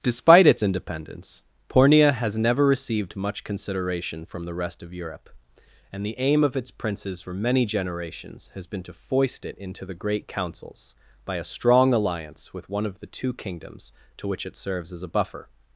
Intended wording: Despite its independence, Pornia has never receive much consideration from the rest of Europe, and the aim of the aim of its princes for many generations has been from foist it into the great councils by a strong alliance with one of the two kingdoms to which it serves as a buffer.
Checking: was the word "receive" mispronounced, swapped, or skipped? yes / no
yes